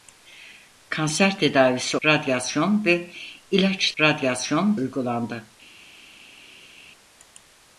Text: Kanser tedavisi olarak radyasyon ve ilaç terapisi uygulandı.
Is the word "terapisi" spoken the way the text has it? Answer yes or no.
no